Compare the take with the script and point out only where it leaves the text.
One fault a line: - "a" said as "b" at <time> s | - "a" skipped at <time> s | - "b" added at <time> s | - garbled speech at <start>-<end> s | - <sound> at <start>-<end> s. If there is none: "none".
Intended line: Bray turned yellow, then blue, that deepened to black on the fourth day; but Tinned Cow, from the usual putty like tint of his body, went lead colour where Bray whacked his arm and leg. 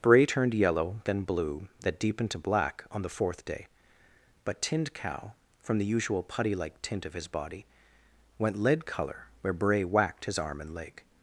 none